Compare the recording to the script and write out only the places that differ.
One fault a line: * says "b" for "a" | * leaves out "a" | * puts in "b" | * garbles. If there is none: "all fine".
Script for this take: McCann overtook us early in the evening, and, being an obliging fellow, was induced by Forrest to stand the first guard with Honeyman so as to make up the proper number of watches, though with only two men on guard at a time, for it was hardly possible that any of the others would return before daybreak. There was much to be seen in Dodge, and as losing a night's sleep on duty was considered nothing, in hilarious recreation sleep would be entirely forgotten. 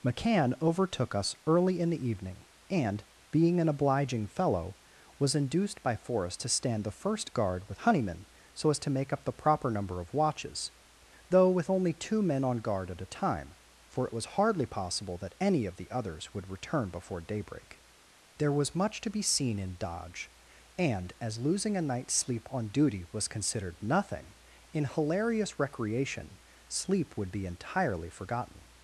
all fine